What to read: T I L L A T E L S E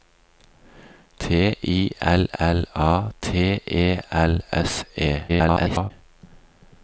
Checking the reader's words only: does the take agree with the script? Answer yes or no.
no